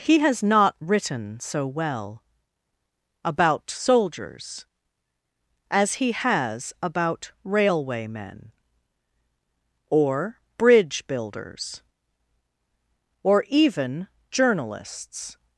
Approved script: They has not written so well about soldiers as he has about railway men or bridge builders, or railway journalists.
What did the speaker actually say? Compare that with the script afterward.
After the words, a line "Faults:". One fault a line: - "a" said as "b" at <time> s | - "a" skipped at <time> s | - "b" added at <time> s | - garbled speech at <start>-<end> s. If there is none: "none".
He has not written so well about soldiers as he has about railway men or bridge builders, or even journalists.
Faults:
- "They" said as "He" at 0.0 s
- "railway" said as "even" at 13.5 s